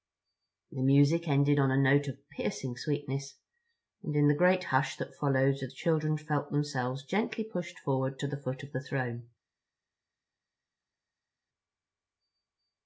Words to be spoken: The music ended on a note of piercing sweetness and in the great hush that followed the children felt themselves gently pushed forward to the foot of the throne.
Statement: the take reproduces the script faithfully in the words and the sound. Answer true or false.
true